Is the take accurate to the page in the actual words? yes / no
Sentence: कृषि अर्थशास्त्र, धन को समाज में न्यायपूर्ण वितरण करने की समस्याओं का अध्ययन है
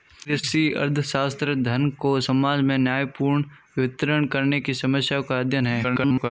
no